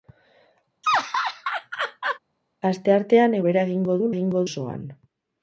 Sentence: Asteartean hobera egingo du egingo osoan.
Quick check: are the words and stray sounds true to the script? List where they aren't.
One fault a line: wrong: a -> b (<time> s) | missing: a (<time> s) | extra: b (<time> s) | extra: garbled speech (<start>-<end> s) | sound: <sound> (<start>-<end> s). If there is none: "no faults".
sound: laugh (0.8-2.2 s)